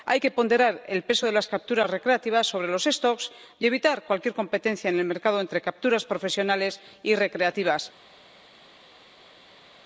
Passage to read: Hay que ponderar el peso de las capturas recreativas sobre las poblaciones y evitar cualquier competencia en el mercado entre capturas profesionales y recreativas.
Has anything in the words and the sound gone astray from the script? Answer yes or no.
no